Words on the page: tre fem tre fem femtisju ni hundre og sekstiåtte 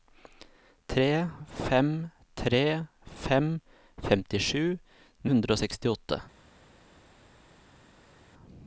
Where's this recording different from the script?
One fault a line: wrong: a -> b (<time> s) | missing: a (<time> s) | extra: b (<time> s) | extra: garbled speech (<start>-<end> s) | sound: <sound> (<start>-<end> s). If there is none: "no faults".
missing: ni (4.7 s)